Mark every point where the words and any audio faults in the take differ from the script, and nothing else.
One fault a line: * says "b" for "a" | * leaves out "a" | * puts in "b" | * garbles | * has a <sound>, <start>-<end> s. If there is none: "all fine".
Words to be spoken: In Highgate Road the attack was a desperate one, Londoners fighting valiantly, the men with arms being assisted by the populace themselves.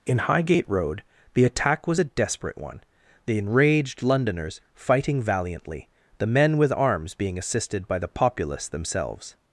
* puts in "the enraged"